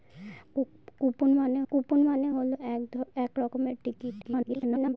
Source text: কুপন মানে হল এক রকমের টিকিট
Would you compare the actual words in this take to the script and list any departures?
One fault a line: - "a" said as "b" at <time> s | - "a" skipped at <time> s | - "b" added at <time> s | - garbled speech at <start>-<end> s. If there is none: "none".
- "কুপন মানে" added at 1.7 s
- garbled speech at 4.2-5.0 s